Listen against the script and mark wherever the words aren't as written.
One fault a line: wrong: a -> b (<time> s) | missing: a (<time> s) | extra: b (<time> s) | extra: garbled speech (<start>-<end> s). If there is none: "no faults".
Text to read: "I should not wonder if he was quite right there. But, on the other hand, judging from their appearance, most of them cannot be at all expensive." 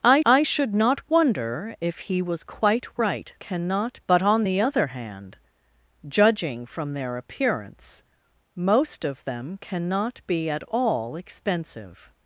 extra: I (0.2 s)
wrong: there -> cannot (3.4 s)